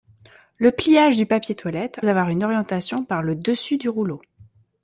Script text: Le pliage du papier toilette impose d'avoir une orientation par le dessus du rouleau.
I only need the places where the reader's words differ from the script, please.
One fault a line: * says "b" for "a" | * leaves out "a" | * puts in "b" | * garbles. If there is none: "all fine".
* leaves out "impose"